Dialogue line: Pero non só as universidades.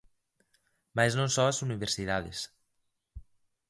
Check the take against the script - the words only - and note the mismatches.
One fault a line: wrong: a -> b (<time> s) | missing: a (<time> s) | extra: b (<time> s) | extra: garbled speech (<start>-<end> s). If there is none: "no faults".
wrong: Pero -> Mais (1.0 s)